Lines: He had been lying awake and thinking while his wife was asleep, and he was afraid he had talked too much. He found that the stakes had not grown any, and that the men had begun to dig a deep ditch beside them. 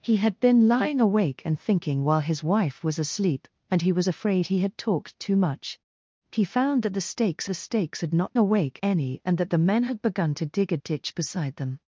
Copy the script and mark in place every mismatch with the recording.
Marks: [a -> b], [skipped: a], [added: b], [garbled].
He had been lying awake and thinking while his wife was asleep, and he was afraid he had talked too much. He found that the stakes [added: the stakes] had not [grown -> awake] any, and that the men had begun to dig a [skipped: deep] ditch beside them.